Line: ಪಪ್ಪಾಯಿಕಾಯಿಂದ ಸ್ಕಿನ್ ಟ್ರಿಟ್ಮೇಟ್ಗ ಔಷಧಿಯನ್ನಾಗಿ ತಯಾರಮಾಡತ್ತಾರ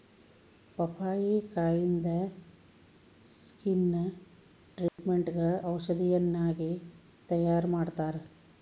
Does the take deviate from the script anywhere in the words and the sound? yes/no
yes